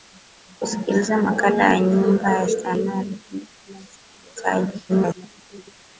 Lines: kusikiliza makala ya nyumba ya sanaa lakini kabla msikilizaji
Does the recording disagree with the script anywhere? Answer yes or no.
yes